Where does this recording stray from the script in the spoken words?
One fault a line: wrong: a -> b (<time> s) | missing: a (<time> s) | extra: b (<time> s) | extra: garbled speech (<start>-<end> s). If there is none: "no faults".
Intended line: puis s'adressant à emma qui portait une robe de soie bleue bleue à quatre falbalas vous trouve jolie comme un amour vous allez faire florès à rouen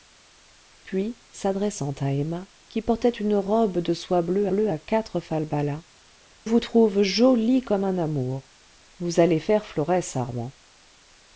no faults